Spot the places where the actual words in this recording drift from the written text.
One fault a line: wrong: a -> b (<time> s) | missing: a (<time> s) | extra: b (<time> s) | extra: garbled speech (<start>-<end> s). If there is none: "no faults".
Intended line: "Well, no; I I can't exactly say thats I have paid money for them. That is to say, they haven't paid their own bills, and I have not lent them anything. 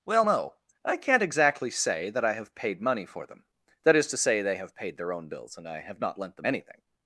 missing: I (1.0 s)
wrong: thats -> that (2.1 s)
wrong: haven't -> have (4.6 s)